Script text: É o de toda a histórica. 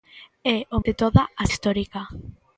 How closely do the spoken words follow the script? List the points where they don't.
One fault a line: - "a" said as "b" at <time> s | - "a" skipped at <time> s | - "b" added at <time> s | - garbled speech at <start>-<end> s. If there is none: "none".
none